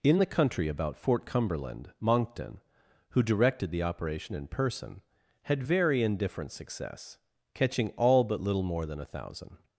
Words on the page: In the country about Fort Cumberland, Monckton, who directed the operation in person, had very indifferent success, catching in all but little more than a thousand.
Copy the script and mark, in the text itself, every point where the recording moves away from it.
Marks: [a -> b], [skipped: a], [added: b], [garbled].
In the country about Fort Cumberland, Monckton, who directed the operation in person, had very indifferent success, catching [skipped: in] all but little more than a thousand.